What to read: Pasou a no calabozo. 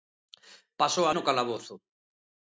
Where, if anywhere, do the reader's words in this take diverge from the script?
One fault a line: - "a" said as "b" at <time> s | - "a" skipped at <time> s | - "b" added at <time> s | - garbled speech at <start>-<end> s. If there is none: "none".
none